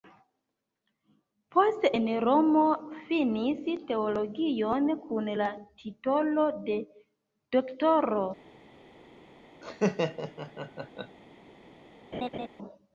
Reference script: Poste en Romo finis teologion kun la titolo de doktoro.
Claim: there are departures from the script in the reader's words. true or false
false